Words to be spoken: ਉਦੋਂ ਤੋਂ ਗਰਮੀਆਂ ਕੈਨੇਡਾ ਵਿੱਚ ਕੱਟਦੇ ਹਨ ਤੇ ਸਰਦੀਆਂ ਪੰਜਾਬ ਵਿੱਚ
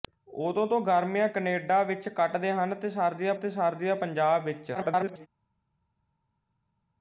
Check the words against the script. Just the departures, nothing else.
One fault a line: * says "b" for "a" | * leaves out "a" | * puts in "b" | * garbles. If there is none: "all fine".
* puts in "ਤੇ ਸਰਦੀਆਂ"
* garbles